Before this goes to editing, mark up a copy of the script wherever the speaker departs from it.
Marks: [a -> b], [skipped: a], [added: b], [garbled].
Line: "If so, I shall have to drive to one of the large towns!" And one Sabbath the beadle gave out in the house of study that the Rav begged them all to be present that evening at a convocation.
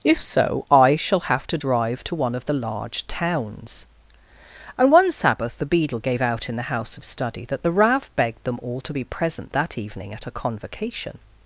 "If so, I shall have to drive to one of the large towns!" And one Sabbath the beadle gave out in the house of study that the Rav begged them all to be present that evening at a convocation.